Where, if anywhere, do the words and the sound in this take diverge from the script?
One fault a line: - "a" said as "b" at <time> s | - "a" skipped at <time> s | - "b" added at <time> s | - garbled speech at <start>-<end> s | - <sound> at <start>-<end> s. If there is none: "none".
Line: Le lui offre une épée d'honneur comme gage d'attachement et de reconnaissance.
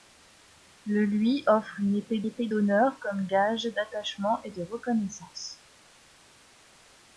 - "épée" added at 2.2 s